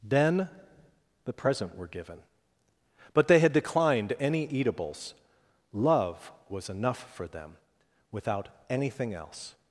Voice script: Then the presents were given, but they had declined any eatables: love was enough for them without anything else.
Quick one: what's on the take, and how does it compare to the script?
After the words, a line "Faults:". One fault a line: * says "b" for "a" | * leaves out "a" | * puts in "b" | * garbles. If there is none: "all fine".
Then the present were given, but they had declined any eatables: love was enough for them without anything else.
Faults:
* says "present" for "presents"